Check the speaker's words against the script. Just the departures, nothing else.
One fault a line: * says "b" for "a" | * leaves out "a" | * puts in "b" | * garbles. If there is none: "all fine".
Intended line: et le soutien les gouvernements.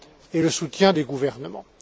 all fine